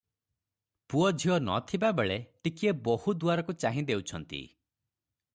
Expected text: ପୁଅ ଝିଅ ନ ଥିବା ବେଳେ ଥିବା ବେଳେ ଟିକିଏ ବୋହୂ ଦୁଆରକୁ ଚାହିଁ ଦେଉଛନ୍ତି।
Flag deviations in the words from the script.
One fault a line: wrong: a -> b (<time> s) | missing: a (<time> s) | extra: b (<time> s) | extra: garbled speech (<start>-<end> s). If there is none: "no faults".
missing: ଥିବା ବେଳେ (2.2 s)